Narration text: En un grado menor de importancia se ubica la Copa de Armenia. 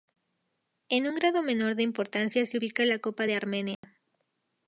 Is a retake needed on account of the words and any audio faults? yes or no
yes